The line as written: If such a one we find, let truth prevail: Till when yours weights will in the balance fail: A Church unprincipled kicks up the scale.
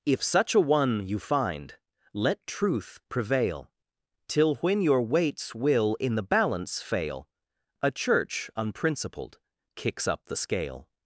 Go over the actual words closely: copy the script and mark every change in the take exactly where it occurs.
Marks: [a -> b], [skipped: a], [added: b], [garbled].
If such a one [we -> you] find, let truth prevail: Till when [yours -> your] weights will in the balance fail: A Church unprincipled kicks up the scale.